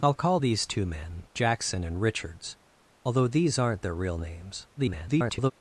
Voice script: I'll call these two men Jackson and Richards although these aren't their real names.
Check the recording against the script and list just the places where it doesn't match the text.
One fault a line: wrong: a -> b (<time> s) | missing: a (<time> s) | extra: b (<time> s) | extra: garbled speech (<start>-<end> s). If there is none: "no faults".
extra: garbled speech (4.8-5.5 s)